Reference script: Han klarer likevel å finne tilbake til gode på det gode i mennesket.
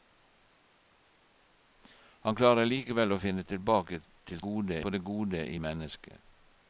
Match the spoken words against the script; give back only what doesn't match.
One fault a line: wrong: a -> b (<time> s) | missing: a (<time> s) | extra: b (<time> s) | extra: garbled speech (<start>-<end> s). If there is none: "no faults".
no faults